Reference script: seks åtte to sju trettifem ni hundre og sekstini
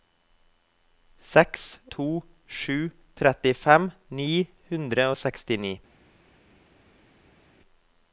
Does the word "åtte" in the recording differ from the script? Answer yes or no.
yes